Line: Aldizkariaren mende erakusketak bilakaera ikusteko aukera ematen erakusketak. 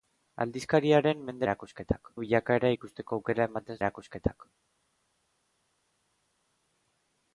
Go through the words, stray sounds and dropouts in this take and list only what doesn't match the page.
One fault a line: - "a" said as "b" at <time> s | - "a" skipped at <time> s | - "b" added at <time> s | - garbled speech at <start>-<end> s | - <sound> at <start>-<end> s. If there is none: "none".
none